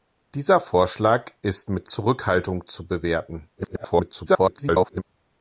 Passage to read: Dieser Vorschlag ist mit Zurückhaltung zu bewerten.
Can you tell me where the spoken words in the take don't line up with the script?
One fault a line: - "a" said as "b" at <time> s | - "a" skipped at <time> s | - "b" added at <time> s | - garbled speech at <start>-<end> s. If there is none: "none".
- garbled speech at 3.6-5.0 s